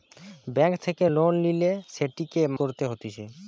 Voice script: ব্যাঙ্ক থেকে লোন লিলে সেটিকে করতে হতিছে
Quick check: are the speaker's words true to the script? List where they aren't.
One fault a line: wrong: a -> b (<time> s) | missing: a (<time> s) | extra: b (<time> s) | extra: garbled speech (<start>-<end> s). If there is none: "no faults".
no faults